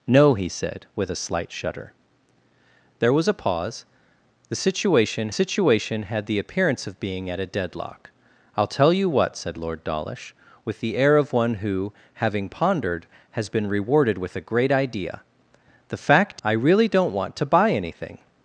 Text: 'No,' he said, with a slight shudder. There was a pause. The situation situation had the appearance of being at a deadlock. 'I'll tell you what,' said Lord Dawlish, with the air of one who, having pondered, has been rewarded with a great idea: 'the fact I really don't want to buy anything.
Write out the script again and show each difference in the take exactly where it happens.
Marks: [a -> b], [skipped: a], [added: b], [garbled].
'No,' he said, with a slight shudder. There was a pause. The situation situation had the appearance of being at a deadlock. 'I'll tell you what,' said Lord Dawlish, with the air of one who, having pondered, has been rewarded with a great idea: 'the fact I really don't want to buy anything.